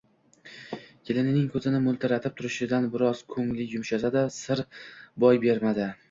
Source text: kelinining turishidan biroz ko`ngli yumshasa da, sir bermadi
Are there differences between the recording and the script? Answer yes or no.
yes